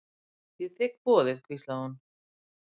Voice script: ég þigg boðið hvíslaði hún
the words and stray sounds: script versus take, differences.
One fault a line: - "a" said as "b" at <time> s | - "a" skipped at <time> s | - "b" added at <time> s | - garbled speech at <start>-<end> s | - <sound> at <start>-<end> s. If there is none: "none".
none